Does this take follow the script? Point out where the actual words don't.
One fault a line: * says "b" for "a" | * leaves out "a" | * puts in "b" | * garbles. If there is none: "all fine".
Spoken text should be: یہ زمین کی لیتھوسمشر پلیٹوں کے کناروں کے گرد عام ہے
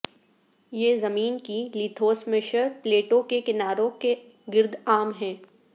all fine